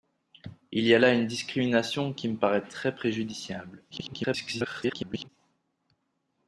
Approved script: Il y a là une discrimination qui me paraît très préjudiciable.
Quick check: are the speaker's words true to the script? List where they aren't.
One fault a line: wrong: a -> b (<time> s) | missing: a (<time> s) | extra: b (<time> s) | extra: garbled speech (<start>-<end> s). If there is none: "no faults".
extra: garbled speech (3.9-5.3 s)